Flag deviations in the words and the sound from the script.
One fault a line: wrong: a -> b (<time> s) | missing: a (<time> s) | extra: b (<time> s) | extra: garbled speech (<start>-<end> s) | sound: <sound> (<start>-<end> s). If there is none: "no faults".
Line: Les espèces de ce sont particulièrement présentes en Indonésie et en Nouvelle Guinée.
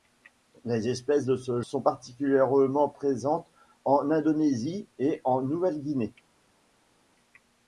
no faults